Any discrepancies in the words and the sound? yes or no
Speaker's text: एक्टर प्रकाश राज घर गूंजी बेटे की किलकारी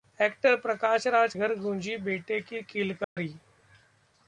yes